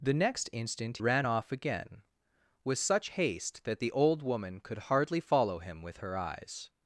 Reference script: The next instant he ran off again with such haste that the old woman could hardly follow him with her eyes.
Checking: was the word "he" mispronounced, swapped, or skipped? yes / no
yes